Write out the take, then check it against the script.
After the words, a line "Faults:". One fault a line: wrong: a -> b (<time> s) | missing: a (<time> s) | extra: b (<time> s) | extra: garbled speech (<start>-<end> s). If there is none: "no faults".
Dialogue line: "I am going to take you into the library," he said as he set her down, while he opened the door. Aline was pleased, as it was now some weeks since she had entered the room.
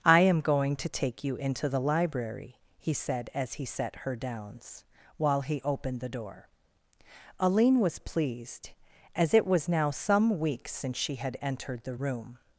"I am going to take you into the library," he said as he set her downs, while he opened the door. Aline was pleased, as it was now some weeks since she had entered the room.
Faults:
wrong: down -> downs (4.2 s)